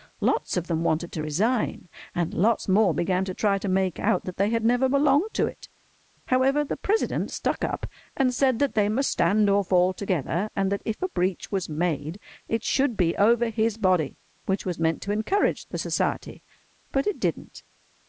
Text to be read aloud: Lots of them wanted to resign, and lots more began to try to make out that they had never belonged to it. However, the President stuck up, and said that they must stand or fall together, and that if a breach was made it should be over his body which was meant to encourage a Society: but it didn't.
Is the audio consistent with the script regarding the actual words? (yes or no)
no